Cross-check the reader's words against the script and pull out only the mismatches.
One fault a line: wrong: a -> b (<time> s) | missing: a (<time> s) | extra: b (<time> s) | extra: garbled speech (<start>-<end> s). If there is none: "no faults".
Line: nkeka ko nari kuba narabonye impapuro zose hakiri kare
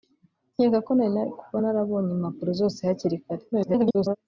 extra: garbled speech (3.5-4.2 s)